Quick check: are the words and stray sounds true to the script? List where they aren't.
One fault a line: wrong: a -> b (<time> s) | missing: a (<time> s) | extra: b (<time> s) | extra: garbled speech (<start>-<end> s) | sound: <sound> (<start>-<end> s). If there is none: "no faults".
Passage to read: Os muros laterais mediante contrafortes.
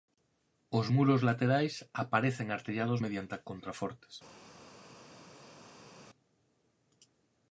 extra: aparecen artellados (2.0 s)